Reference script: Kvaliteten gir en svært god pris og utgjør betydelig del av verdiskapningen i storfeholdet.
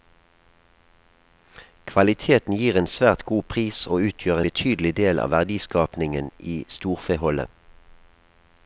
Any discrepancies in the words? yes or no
no